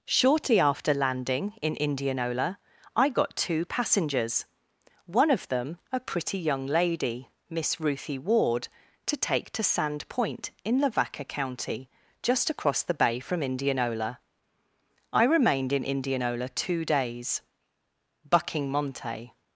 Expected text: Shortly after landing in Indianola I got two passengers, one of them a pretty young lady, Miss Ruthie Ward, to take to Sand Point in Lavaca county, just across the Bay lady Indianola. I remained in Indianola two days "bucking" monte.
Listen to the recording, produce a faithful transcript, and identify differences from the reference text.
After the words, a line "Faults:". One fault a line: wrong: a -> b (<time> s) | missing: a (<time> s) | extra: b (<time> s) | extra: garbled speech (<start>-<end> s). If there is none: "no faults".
Shortly after landing in Indianola I got two passengers, one of them a pretty young lady, Miss Ruthie Ward, to take to Sand Point in Lavaca county, just across the Bay from Indianola. I remained in Indianola two days "bucking" monte.
Faults:
wrong: lady -> from (13.2 s)